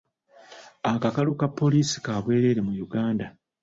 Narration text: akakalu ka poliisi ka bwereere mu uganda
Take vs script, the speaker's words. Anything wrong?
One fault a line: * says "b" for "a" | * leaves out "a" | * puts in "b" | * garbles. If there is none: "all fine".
all fine